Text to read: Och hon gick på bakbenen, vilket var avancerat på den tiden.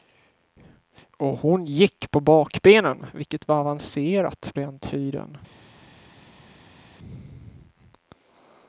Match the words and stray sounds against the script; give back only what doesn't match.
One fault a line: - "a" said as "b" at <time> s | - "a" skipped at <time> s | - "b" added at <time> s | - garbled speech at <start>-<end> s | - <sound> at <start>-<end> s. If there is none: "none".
- "på" skipped at 4.5 s